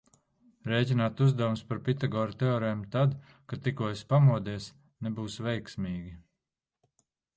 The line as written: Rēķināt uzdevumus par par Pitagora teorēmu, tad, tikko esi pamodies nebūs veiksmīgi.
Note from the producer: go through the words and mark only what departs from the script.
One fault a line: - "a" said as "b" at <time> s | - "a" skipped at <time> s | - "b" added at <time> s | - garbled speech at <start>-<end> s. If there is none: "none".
- "par" skipped at 1.8 s
- "kad" added at 3.5 s